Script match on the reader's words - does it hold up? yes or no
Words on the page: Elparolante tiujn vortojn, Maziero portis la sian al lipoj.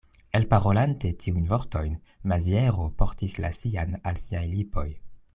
no